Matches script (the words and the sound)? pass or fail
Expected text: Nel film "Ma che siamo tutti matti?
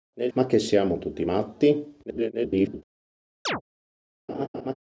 fail